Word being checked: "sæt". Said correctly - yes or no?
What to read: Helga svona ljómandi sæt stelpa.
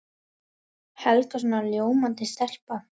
no